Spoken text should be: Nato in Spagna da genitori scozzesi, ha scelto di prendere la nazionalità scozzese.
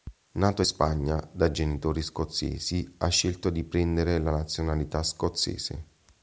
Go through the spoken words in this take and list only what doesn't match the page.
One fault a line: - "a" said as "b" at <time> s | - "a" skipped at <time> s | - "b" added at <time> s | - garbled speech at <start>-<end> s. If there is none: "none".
none